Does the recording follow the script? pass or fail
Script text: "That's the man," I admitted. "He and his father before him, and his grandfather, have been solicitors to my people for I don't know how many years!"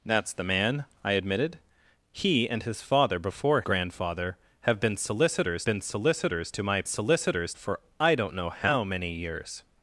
fail